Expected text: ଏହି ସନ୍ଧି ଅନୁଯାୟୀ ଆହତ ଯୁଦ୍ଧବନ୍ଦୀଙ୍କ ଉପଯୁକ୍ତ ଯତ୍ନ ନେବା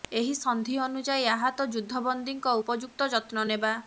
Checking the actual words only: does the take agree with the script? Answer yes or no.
yes